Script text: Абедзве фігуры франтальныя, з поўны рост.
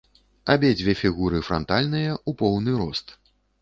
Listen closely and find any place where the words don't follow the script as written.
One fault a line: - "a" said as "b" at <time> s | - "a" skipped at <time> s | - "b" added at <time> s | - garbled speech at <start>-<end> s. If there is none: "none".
- "з" said as "у" at 2.3 s